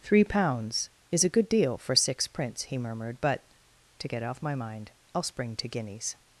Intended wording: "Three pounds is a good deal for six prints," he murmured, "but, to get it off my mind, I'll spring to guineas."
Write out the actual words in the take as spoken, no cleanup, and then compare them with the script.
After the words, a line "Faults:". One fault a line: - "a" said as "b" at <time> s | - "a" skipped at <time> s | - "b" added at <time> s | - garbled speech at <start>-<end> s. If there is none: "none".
"Three pounds is a good deal for six prints," he murmured, "but, to get off my mind, I'll spring to guineas."
Faults:
- "it" skipped at 4.2 s